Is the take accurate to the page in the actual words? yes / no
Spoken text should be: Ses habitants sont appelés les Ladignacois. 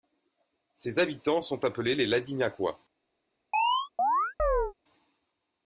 yes